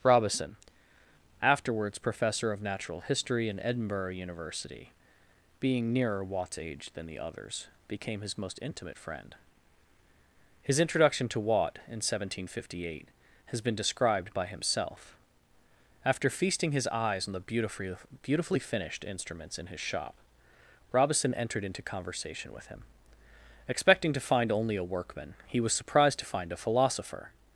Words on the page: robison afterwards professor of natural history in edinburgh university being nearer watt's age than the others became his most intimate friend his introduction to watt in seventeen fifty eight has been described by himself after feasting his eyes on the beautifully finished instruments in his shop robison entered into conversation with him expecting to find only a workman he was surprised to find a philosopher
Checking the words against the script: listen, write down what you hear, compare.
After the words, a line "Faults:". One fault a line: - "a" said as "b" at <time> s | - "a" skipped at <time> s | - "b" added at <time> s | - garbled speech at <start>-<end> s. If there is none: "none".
robison afterwards professor of natural history in edinburgh university being nearer watt's age than the others became his most intimate friend his introduction to watt in seventeen fifty eight has been described by himself after feasting his eyes on the beautifully beautifully finished instruments in his shop robison entered into conversation with him expecting to find only a workman he was surprised to find a philosopher
Faults:
- "beautifully" added at 18.2 s